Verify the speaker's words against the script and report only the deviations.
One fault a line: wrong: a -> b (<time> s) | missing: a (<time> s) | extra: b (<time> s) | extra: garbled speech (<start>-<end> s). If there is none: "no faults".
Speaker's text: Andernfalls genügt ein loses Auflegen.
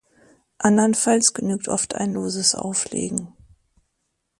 extra: oft (1.7 s)